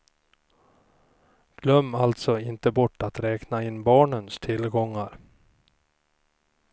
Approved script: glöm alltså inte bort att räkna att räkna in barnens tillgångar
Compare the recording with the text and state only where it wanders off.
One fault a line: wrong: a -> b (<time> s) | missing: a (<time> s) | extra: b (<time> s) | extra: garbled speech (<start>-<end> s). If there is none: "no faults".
missing: att räkna (3.6 s)